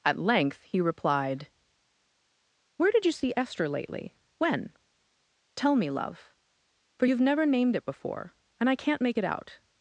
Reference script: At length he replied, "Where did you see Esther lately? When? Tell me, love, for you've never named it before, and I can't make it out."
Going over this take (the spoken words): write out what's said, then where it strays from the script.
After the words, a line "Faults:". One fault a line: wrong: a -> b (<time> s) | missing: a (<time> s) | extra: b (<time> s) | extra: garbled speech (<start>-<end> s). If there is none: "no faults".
At length he replied, "Where did you see Esther lately? When? Tell me, love, for you've never named it before, and I can't make it out."
Faults:
no faults